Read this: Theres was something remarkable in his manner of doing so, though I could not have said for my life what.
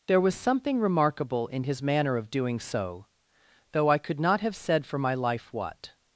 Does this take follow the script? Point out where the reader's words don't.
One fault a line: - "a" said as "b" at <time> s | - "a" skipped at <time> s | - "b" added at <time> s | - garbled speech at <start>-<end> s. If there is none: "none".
- "Theres" said as "There" at 0.1 s